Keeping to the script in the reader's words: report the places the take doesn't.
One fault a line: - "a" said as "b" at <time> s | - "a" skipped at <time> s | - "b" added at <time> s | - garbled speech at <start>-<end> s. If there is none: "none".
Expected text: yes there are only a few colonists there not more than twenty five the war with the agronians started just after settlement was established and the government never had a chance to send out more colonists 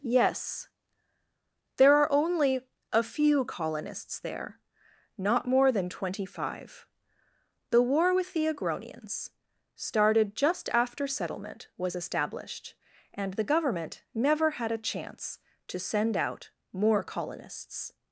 none